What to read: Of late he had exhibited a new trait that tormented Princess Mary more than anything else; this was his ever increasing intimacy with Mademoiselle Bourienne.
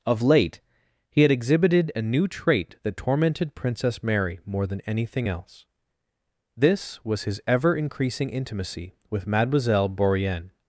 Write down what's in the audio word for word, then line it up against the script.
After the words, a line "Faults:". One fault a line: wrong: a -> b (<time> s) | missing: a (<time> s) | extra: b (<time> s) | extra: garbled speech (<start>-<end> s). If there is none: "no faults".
Of late he had exhibited a new trait that tormented Princess Mary more than anything else; this was his ever increasing intimacy with Mademoiselle Bourienne.
Faults:
no faults